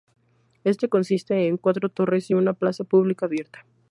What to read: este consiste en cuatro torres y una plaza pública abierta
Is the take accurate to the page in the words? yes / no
yes